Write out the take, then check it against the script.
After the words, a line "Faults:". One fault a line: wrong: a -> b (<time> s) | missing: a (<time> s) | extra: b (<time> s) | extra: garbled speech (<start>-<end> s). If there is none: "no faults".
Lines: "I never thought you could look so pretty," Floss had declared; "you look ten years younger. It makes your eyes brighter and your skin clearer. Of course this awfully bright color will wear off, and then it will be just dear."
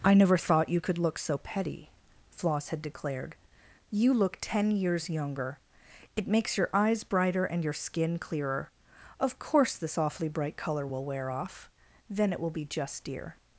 "I never thought you could look so petty," Floss had declared; "you look ten years younger. It makes your eyes brighter and your skin clearer. Of course this awfully bright color will wear off, then it will be just dear."
Faults:
wrong: pretty -> petty (1.4 s)
missing: and (11.7 s)